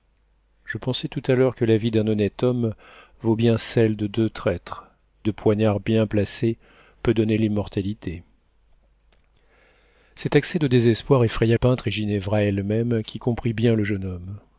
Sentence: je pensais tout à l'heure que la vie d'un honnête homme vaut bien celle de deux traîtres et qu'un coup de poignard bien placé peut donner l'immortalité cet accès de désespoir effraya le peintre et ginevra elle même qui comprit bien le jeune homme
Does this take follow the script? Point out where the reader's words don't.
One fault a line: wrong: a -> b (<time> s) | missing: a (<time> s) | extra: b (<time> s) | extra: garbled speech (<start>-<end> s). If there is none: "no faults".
missing: et qu'un coup (4.9 s)
missing: le (11.6 s)